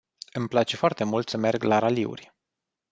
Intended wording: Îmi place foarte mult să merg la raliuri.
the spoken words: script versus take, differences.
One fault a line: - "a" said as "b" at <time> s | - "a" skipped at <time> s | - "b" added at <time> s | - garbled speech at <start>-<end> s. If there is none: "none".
none